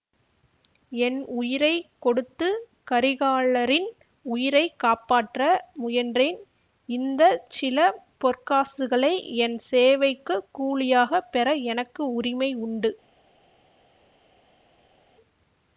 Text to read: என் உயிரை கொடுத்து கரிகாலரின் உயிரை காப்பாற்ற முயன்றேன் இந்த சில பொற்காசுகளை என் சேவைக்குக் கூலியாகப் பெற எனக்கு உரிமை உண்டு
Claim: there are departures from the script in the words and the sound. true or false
false